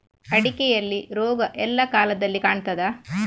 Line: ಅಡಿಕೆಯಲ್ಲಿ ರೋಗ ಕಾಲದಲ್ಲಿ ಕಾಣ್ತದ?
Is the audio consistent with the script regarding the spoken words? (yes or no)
no